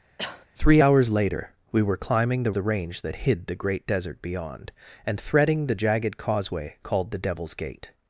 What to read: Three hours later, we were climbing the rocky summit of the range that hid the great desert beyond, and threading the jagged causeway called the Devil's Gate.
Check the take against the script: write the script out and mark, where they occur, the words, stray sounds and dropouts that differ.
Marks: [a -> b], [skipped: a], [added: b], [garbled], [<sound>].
[cough] Three hours later, we were climbing the [skipped: rocky summit of] the range that hid the great desert beyond, and threading the jagged causeway called the Devil's Gate.